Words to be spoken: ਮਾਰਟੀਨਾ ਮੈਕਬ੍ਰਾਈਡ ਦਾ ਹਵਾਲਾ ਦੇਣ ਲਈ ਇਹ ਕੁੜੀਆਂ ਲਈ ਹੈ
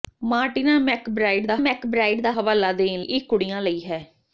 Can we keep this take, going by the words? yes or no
no